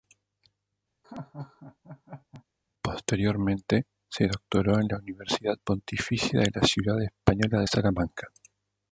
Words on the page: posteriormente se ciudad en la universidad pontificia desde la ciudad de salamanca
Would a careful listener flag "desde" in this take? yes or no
yes